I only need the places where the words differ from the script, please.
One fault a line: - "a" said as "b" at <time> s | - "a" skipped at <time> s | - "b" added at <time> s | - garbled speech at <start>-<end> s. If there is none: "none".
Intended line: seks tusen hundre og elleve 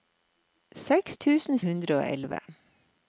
none